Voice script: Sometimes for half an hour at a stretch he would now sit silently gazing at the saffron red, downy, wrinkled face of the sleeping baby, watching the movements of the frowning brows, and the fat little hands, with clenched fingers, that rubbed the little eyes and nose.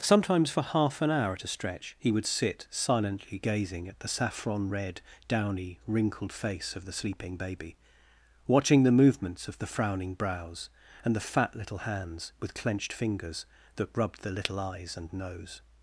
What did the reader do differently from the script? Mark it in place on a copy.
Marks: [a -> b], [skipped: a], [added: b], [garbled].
Sometimes for half an hour at a stretch he would [skipped: now] sit silently gazing at the saffron red, downy, wrinkled face of the sleeping baby, watching the movements of the frowning brows, and the fat little hands, with clenched fingers, that rubbed the little eyes and nose.